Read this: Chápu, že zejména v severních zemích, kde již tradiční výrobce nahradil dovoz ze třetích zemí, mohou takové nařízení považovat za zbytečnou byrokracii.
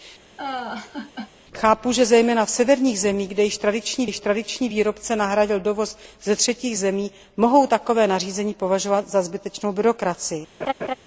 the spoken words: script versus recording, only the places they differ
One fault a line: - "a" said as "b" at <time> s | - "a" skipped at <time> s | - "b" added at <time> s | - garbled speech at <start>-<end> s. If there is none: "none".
- "již tradiční" added at 4.0 s